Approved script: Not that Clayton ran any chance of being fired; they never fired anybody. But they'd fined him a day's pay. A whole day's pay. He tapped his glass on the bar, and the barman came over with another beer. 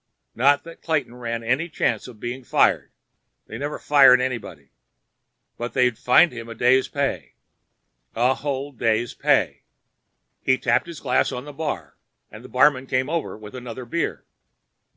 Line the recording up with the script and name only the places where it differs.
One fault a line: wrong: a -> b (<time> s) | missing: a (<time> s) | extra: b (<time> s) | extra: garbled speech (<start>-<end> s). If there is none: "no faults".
no faults